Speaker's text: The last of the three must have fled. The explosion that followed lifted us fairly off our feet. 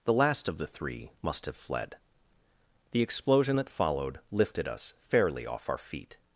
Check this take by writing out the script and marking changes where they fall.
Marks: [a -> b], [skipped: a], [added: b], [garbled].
The last of the three must have fled. The explosion that followed lifted us fairly off our feet.